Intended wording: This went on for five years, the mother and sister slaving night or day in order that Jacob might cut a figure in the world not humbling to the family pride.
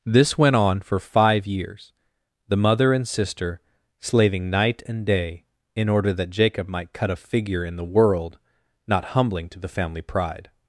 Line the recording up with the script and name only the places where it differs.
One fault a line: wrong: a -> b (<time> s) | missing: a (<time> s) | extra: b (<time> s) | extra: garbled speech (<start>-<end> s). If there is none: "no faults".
wrong: or -> and (4.9 s)